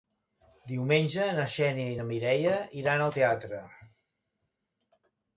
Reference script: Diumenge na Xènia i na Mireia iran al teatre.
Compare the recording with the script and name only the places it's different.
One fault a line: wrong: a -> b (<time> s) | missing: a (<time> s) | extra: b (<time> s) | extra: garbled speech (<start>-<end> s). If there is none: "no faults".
no faults